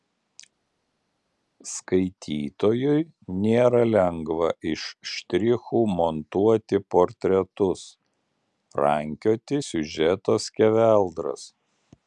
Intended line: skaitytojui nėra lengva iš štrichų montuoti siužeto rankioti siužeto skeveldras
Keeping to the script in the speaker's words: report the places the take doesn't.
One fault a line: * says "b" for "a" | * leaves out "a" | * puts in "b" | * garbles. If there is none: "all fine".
* says "portretus" for "siužeto"